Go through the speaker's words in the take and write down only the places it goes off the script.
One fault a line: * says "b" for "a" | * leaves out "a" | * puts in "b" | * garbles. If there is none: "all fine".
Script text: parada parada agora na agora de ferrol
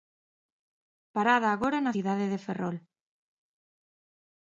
* leaves out "parada"
* says "cidade" for "agora"